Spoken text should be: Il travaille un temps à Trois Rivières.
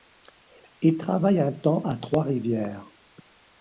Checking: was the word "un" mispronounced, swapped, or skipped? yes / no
no